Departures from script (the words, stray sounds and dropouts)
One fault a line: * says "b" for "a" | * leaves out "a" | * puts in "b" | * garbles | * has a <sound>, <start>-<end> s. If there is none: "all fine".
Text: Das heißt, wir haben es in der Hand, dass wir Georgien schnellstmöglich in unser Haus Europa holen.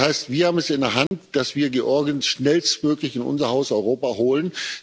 * has a dropout, 1.1-1.1 s